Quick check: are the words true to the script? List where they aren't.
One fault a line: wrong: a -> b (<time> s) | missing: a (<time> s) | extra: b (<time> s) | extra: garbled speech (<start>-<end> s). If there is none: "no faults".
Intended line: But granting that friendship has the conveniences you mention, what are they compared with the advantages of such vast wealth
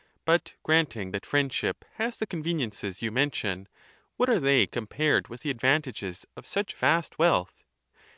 no faults